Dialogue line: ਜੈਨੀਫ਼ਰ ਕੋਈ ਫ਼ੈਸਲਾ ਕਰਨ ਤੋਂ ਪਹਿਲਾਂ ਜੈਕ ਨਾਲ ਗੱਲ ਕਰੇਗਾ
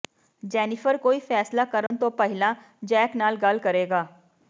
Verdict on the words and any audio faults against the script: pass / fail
fail